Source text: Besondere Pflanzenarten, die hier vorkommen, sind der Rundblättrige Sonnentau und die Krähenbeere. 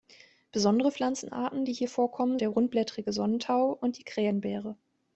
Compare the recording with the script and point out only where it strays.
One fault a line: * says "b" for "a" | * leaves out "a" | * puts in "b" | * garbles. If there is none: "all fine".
* leaves out "sind"